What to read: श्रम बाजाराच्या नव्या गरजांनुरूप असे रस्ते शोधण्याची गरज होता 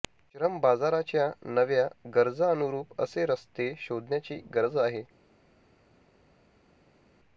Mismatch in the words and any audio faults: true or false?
true